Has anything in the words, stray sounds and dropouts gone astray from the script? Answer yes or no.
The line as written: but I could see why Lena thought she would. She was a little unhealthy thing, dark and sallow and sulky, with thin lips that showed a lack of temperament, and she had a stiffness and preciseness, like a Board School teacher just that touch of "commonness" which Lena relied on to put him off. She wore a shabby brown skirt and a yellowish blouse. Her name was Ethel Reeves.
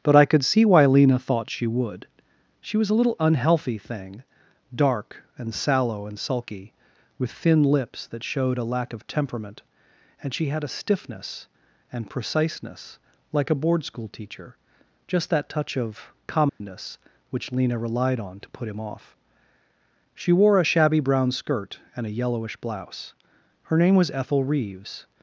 yes